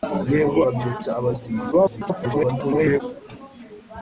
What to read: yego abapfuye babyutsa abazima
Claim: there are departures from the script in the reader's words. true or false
true